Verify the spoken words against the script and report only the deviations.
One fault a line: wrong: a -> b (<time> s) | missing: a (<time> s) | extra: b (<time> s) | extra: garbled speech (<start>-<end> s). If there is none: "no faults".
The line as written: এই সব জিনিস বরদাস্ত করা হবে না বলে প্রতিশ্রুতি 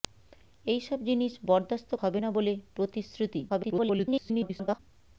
missing: করা (1.9 s)
extra: garbled speech (3.5-4.8 s)